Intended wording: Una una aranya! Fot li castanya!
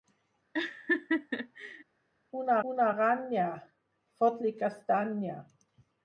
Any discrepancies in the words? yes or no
no